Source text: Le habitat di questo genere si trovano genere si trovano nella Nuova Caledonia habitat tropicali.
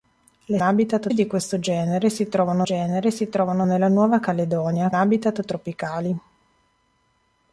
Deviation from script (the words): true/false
false